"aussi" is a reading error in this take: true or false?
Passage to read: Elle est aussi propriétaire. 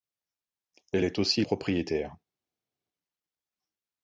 false